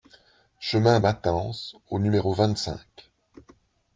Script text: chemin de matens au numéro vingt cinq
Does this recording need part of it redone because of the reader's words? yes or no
yes